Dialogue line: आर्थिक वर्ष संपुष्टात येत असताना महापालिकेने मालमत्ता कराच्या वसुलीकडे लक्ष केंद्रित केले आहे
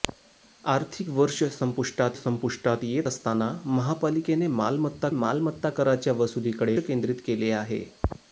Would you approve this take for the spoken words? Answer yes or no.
no